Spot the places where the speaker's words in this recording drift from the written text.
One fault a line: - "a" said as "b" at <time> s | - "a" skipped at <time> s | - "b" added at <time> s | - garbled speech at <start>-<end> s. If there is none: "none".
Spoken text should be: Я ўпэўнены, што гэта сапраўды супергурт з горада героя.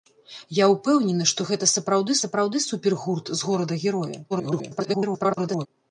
- "сапраўды" added at 2.2 s
- garbled speech at 4.3-5.7 s